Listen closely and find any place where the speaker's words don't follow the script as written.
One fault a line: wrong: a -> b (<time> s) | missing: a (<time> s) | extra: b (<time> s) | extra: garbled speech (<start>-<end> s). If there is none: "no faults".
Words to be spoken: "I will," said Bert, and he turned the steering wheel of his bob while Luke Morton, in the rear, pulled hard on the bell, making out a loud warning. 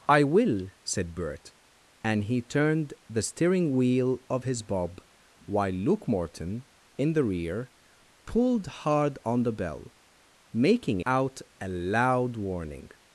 no faults